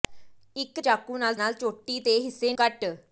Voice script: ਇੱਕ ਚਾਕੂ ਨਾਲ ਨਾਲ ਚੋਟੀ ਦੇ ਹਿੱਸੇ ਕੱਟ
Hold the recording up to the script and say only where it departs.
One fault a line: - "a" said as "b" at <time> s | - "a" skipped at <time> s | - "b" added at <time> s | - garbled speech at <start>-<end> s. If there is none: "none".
none